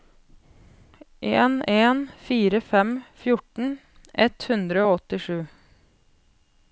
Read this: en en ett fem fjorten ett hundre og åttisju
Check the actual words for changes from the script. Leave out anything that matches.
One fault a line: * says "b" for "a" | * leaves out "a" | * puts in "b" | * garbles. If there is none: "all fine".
* says "fire" for "ett"